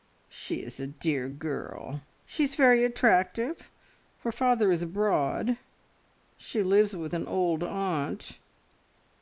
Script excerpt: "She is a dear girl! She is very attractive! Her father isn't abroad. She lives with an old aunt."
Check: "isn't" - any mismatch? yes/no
yes